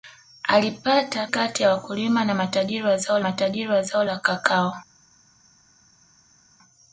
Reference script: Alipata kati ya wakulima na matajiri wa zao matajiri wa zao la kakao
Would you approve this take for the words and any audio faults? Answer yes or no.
yes